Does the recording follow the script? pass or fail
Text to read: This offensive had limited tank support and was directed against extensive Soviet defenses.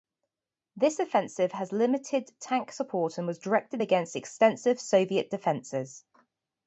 pass